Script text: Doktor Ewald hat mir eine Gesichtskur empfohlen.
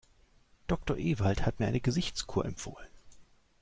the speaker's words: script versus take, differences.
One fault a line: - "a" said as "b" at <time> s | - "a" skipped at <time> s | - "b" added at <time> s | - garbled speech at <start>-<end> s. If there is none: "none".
none